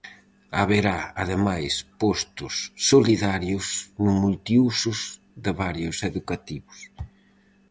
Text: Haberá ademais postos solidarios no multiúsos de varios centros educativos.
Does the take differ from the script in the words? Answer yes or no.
yes